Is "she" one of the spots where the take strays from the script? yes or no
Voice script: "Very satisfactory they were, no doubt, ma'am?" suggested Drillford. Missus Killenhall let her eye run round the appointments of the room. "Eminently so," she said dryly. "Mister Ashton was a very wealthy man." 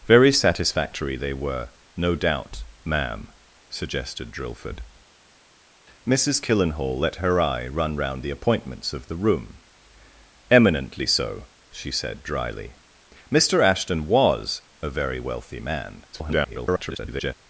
no